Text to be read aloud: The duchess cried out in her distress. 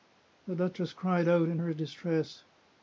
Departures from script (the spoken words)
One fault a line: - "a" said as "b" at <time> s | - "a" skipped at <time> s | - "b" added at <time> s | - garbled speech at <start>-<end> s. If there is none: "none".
none